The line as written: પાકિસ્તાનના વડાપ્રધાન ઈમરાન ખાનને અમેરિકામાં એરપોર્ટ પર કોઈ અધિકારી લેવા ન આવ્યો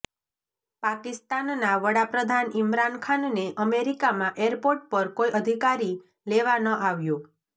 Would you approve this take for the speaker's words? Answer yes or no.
yes